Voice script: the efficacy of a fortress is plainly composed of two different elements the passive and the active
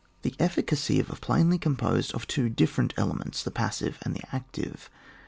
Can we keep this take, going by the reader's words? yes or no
no